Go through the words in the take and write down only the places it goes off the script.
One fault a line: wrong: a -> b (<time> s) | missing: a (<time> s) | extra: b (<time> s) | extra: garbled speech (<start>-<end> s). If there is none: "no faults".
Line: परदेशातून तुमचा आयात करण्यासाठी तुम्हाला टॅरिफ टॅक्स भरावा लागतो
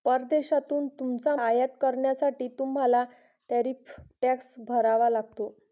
no faults